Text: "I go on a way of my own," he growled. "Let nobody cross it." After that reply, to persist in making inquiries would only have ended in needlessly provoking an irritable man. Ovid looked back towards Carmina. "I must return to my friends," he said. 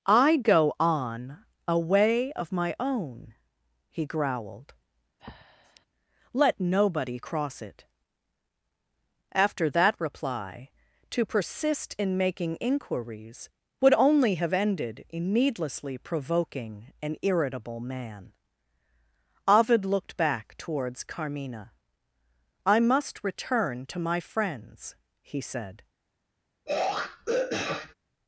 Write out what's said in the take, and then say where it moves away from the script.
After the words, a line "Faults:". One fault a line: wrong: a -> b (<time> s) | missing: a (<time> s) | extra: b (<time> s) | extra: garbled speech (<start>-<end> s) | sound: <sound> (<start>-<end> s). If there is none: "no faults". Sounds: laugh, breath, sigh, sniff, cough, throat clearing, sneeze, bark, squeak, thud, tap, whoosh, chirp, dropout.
"I go on a way of my own," he growled. "Let nobody cross it." After that reply, to persist in making inquiries would only have ended in needlessly provoking an irritable man. Ovid looked back towards Carmina. "I must return to my friends," he said.
Faults:
sound: breath (5.2-5.9 s)
sound: throat clearing (26.7-27.9 s)